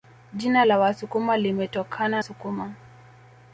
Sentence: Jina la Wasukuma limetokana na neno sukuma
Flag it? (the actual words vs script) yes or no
yes